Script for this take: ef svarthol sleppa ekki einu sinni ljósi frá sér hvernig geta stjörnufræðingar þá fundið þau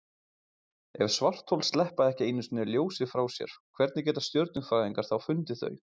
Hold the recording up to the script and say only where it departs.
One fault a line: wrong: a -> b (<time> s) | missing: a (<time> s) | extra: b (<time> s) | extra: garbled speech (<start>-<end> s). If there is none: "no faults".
no faults